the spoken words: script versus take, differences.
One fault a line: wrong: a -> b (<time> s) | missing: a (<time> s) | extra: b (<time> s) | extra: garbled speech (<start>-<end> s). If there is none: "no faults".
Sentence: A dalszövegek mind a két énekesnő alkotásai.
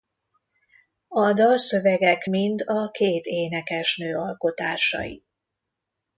no faults